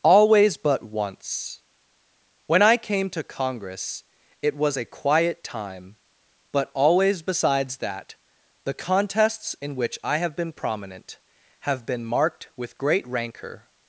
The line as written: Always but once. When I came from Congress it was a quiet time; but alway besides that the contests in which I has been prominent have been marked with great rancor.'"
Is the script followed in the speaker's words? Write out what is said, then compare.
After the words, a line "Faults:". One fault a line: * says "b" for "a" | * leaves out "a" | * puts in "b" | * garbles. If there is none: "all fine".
Always but once. When I came to Congress it was a quiet time; but always besides that the contests in which I have been prominent have been marked with great rancor.'"
Faults:
* says "to" for "from"
* says "always" for "alway"
* says "have" for "has"